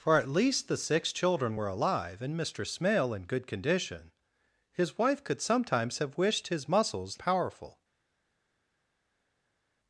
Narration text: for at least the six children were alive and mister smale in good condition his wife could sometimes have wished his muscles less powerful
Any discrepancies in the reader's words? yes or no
yes